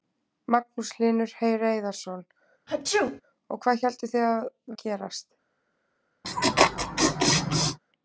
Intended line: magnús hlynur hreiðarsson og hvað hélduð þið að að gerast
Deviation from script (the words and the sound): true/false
true